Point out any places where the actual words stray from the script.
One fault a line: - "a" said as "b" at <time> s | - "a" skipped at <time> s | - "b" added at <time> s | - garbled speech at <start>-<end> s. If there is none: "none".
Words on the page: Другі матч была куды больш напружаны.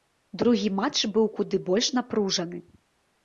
- "была" said as "быў" at 1.2 s